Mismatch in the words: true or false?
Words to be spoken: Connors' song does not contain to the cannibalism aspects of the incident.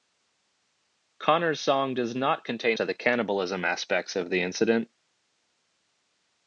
false